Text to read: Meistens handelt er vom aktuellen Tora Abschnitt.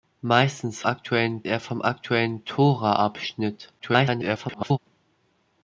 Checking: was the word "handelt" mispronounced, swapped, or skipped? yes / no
yes